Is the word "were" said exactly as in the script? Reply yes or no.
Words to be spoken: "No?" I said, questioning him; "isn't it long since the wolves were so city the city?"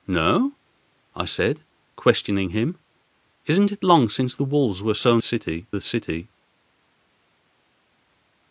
yes